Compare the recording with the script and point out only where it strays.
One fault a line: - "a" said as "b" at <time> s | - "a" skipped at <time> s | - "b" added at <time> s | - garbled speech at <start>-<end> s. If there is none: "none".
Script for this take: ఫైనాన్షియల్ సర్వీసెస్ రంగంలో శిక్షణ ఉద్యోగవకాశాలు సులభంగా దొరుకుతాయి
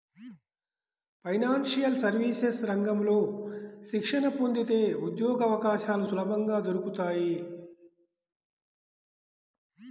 - "పొందితే" added at 4.3 s